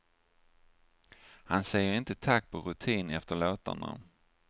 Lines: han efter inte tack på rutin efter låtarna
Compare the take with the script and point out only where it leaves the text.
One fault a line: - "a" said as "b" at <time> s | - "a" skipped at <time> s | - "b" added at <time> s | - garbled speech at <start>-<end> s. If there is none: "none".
- "efter" said as "säger" at 1.6 s